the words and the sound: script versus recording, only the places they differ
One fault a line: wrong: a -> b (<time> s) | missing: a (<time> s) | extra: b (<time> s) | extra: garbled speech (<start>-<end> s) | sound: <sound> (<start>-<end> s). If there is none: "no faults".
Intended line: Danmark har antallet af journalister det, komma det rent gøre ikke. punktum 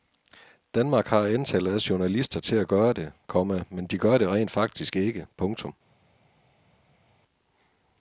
extra: til at gøre (2.4 s)
extra: men de gør (3.7 s)
wrong: gøre -> faktisk (4.5 s)